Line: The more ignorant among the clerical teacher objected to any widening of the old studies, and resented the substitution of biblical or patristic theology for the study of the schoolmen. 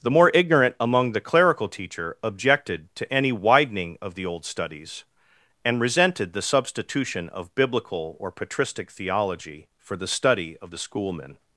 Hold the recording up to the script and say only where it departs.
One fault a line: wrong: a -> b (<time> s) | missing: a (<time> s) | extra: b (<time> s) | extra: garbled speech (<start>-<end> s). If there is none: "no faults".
no faults